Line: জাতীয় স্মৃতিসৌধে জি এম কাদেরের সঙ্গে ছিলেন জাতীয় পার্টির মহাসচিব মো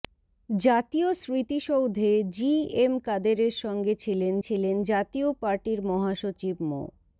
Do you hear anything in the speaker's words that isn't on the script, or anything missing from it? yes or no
yes